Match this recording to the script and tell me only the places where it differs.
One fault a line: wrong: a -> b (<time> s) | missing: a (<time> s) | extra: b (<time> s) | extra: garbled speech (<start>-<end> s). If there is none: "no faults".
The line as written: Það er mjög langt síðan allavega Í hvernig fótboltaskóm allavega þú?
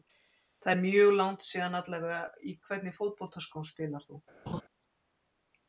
wrong: allavega -> spilar (3.7 s)